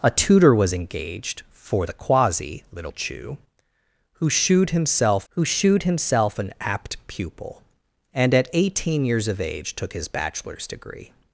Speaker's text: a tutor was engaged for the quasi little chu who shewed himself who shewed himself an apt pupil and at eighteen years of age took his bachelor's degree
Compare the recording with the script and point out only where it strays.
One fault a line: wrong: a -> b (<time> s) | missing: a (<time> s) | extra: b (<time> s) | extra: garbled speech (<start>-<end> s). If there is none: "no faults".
no faults